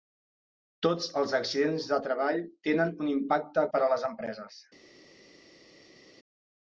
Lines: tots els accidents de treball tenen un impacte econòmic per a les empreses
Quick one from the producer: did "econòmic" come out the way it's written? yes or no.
no